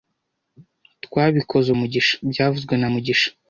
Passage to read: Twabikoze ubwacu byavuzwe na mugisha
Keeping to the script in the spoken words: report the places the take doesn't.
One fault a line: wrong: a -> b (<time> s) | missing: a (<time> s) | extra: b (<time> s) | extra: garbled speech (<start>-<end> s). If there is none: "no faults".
wrong: ubwacu -> mugisha (1.8 s)